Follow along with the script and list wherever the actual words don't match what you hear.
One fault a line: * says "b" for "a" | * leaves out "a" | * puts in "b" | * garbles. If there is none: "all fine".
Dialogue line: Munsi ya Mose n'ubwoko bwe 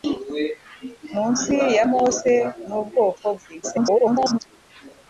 * garbles